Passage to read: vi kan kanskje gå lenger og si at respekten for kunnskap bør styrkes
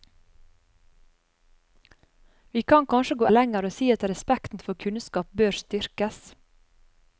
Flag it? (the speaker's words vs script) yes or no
no